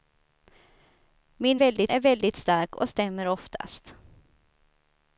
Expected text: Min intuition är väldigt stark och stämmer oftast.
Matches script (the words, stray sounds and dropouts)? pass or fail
fail